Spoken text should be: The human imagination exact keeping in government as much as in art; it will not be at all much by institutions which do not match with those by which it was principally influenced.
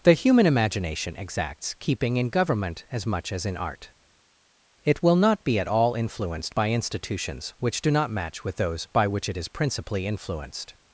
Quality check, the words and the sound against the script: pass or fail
fail